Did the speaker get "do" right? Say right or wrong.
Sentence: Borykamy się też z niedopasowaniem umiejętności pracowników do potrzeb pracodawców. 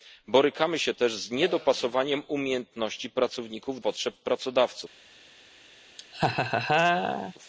wrong